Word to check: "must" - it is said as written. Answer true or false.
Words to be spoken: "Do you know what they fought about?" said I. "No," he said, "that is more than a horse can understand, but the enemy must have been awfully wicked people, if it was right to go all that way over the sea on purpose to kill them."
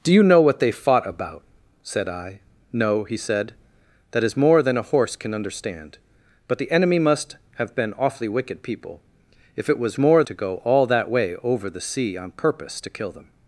true